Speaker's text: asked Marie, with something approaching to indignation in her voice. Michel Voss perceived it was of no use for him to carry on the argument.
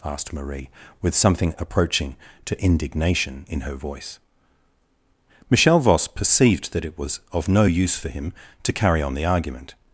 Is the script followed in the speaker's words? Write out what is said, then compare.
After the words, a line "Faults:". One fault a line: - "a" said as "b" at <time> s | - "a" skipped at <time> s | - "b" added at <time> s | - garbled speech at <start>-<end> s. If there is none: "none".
asked Marie, with something approaching to indignation in her voice. Michel Voss perceived that it was of no use for him to carry on the argument.
Faults:
- "that" added at 6.7 s